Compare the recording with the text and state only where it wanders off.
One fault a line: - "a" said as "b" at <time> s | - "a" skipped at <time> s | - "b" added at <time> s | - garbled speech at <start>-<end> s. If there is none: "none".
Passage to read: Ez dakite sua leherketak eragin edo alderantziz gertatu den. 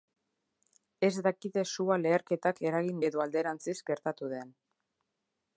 none